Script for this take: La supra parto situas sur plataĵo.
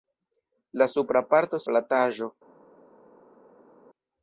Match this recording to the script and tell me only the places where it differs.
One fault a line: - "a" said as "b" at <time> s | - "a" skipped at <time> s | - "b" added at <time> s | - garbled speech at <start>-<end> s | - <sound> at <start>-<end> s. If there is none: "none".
- "situas sur" skipped at 1.6 s